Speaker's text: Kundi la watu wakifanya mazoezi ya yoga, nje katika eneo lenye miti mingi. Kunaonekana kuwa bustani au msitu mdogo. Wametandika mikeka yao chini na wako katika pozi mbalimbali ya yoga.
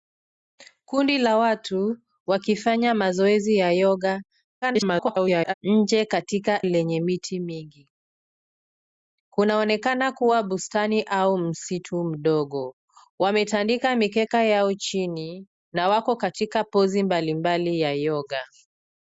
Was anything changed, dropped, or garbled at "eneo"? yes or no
yes